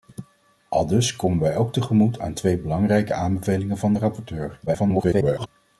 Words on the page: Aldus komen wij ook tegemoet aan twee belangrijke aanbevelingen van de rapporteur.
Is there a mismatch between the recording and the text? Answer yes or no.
yes